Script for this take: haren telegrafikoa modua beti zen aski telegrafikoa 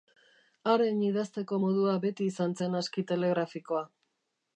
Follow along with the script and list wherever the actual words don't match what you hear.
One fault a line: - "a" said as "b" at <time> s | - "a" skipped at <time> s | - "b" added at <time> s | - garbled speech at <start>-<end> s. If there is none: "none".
- "telegrafikoa" said as "idazteko" at 1.1 s
- "izan" added at 2.3 s